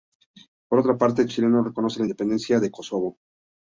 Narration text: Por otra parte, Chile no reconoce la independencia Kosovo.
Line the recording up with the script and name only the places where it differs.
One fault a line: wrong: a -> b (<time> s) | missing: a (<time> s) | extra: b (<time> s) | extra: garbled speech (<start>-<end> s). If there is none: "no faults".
extra: de (2.6 s)